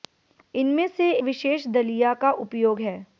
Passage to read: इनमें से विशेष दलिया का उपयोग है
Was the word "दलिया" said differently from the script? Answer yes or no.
no